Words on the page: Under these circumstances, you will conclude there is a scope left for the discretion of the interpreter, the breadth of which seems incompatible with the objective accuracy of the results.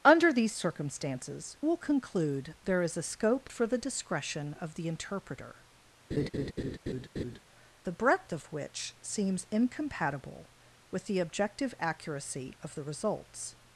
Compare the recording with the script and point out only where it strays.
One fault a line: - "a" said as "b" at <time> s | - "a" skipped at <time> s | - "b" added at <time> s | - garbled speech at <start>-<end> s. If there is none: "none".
- "you" skipped at 1.6 s
- "left" skipped at 3.5 s